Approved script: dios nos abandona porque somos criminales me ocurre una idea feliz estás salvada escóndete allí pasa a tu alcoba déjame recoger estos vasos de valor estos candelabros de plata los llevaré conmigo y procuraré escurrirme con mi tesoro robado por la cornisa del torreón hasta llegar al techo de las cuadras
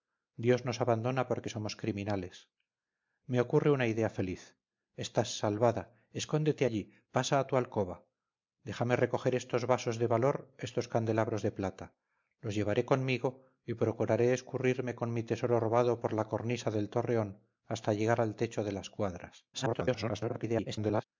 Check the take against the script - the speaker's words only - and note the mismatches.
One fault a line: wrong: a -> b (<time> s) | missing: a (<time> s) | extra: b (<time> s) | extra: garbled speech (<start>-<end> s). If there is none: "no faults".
extra: garbled speech (19.5-21.0 s)